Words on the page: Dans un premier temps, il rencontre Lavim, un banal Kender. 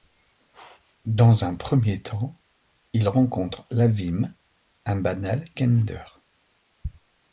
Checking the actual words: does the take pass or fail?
pass